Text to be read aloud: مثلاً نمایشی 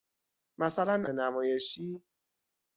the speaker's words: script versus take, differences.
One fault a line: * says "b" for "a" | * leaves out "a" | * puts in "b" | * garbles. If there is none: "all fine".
all fine